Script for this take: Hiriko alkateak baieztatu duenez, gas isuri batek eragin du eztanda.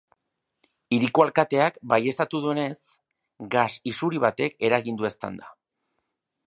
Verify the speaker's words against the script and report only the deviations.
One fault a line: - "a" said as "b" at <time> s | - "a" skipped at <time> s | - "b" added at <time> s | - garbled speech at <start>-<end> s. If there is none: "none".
none